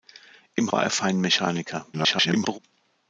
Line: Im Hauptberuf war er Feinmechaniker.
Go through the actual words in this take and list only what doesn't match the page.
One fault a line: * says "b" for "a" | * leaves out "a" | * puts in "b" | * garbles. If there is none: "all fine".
* leaves out "Hauptberuf"
* garbles